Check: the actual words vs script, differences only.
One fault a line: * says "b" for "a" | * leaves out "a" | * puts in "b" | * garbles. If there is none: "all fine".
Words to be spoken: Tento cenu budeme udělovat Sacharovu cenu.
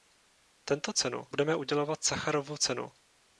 all fine